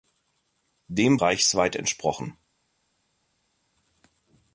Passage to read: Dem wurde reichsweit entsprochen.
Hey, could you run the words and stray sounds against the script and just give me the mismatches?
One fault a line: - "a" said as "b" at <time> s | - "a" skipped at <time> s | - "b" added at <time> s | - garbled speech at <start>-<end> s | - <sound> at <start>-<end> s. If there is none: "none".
- "wurde" skipped at 1.2 s